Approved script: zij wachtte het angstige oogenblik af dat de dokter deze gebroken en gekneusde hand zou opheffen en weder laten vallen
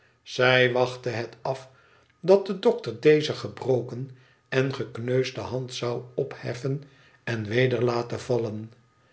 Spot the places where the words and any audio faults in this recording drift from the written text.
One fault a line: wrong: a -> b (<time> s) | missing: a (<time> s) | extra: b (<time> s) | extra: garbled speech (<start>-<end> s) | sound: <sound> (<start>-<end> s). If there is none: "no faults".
missing: angstige oogenblik (1.4 s)